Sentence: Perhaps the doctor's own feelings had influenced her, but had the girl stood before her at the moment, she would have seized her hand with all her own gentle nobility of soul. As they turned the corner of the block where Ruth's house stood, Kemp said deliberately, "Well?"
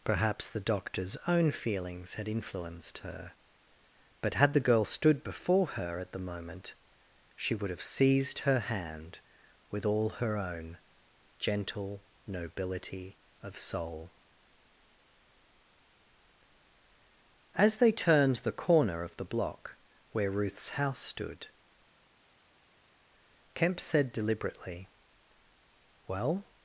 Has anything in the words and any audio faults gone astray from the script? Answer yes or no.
no